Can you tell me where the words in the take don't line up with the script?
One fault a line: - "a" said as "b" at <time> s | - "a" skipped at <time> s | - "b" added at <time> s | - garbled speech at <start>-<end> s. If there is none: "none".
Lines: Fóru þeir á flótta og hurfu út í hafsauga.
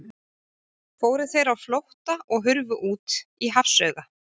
none